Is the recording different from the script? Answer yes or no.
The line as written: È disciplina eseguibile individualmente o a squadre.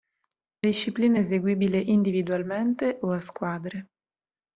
no